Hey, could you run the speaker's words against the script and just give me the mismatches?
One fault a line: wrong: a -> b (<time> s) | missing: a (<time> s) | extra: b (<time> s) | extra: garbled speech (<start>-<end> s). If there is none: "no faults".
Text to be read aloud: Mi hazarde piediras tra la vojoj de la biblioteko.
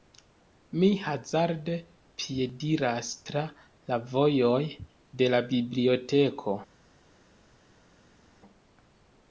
no faults